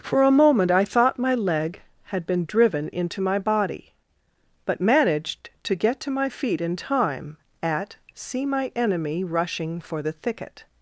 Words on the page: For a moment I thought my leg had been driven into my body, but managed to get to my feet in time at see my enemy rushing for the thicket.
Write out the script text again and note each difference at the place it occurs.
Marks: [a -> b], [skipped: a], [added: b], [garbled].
For a moment I thought my leg had been driven into my body, but managed to get to my feet in time at see my enemy rushing for the thicket.